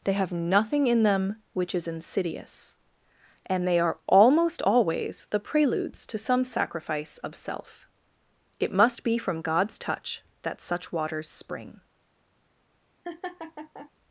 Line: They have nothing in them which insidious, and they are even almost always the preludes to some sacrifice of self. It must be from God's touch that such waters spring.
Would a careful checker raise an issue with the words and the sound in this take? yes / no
yes